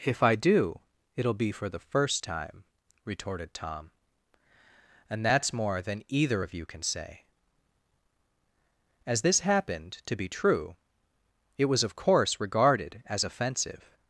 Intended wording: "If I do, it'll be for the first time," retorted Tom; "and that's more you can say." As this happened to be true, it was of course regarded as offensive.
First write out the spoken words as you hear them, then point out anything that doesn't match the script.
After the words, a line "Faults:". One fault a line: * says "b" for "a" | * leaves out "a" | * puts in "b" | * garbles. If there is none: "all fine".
"If I do, it'll be for the first time," retorted Tom; "and that's more than either of you can say." As this happened to be true, it was of course regarded as offensive.
Faults:
* puts in "than either of"